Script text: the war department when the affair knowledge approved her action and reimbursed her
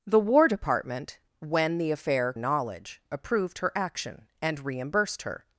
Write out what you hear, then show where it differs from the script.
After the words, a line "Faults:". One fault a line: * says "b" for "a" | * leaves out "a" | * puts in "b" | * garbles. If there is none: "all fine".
the war department when the affair knowledge approved her action and reimbursed her
Faults:
all fine